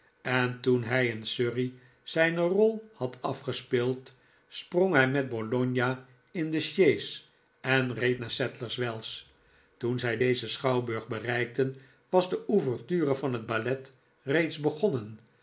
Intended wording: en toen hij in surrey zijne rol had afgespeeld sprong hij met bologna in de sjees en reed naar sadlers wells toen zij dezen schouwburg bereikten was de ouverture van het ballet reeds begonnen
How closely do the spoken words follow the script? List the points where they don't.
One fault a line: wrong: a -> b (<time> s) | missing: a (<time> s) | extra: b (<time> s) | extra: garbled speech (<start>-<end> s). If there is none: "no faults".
no faults